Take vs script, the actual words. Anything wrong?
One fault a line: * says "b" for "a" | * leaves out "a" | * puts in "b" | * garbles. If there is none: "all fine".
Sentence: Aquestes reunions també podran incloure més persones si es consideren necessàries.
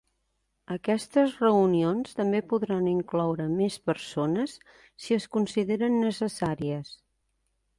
all fine